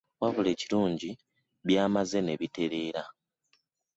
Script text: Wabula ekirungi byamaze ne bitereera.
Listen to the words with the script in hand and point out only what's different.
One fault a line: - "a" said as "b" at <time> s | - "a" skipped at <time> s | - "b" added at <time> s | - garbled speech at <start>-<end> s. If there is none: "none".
none